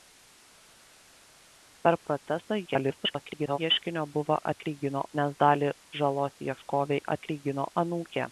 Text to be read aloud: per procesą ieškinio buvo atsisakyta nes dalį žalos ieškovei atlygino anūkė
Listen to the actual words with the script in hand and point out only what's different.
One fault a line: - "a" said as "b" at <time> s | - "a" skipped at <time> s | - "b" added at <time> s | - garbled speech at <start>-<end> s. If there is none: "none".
- garbled speech at 2.6-3.6 s
- "atsisakyta" said as "atlygino" at 4.5 s